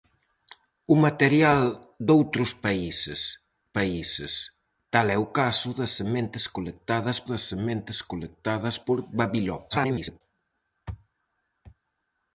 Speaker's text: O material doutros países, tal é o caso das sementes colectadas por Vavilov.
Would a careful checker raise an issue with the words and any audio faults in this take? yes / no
yes